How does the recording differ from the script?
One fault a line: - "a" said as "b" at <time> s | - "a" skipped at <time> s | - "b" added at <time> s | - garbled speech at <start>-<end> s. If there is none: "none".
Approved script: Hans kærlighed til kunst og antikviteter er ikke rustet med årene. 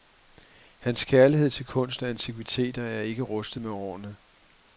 none